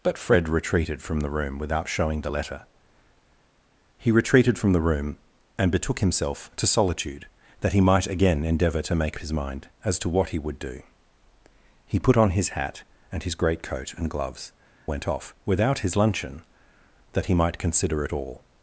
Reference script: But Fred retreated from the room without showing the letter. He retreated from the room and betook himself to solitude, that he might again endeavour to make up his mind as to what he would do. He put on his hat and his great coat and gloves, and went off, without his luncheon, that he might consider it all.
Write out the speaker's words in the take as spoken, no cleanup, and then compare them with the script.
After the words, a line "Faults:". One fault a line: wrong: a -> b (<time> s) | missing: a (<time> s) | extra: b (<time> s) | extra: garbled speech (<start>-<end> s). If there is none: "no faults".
But Fred retreated from the room without showing the letter. He retreated from the room and betook himself to solitude, that he might again endeavour to make his mind as to what he would do. He put on his hat and his great coat and gloves, went off, without his luncheon, that he might consider it all.
Faults:
missing: up (9.2 s)
missing: and (14.5 s)